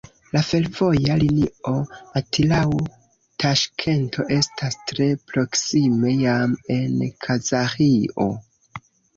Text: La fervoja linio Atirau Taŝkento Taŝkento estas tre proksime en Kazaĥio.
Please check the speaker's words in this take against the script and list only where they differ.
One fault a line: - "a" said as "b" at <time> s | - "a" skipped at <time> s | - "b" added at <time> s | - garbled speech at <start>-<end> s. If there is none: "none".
- "Taŝkento" skipped at 4.3 s
- "jam" added at 6.2 s